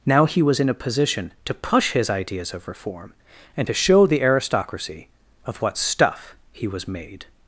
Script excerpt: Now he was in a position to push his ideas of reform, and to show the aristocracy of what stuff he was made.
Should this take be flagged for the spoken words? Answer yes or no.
no